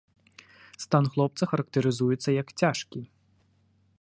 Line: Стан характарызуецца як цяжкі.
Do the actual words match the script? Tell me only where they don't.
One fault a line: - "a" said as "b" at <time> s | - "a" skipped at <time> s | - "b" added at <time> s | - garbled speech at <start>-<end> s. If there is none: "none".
- "хлопца" added at 1.1 s